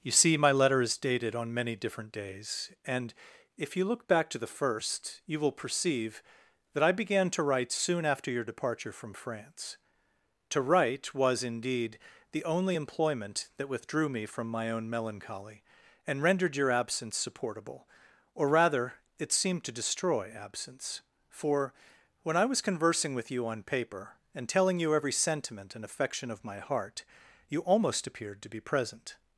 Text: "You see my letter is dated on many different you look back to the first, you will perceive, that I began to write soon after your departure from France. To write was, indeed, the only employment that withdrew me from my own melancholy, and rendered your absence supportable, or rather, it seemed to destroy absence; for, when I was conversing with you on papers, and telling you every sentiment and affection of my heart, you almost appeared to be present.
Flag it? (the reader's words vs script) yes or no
yes